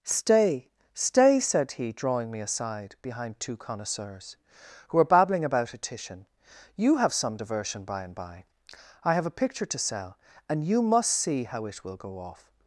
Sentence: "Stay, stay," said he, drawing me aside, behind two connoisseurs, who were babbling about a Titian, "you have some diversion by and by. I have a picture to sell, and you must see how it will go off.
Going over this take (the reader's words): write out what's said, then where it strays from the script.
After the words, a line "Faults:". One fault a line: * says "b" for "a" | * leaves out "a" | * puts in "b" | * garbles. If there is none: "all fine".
"Stay, stay," said he, drawing me aside, behind two connoisseurs, who were babbling about a Titian, "you have some diversion by and by. I have a picture to sell, and you must see how it will go off.
Faults:
all fine